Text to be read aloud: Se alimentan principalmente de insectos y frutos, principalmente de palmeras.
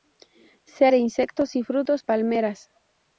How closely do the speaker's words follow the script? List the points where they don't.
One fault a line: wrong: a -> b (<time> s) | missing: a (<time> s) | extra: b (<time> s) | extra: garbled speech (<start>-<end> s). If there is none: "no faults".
missing: alimentan principalmente (0.9 s)
missing: principalmente de (2.0 s)